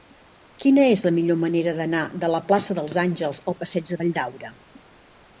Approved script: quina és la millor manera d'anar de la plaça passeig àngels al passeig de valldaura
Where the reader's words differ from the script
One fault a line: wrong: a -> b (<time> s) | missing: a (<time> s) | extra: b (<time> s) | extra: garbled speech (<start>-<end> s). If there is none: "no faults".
wrong: passeig -> dels (2.8 s)